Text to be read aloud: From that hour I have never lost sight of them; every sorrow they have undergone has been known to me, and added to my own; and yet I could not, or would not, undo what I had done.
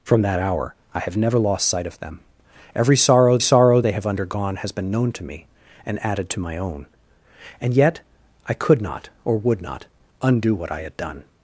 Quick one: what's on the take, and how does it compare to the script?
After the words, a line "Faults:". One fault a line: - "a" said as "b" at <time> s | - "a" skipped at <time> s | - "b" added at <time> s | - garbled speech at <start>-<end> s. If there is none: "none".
From that hour I have never lost sight of them; every sorrow sorrow they have undergone has been known to me, and added to my own; and yet I could not, or would not, undo what I had done.
Faults:
- "sorrow" added at 3.4 s